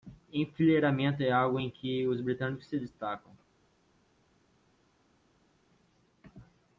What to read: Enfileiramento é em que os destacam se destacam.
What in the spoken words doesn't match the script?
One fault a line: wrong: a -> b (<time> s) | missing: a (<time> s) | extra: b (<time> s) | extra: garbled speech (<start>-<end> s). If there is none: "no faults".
extra: algo (1.3 s)
wrong: destacam -> britânicos (2.2 s)